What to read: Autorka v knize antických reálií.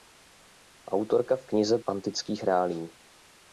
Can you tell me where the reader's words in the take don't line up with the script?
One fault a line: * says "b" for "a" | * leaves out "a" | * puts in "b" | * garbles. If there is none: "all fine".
all fine